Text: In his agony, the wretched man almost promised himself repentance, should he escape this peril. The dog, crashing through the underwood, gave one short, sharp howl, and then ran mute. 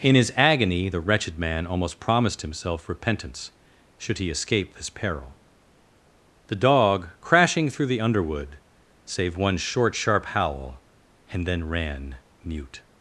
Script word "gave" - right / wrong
wrong